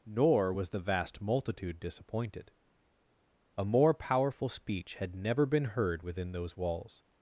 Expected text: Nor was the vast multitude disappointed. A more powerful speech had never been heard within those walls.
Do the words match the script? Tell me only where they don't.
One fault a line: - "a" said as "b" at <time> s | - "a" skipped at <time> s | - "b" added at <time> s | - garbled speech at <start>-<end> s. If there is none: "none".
none